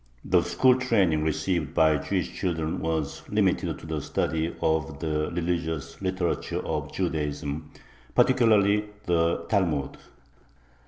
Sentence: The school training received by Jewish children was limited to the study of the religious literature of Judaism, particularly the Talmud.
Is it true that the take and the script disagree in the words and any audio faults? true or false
false